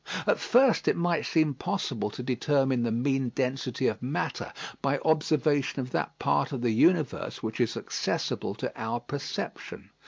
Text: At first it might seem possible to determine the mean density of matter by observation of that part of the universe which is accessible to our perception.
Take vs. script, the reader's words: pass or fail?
pass